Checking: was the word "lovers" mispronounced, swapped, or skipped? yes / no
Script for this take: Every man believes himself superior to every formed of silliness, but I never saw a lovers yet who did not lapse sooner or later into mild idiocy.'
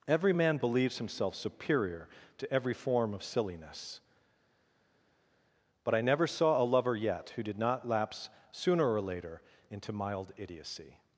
yes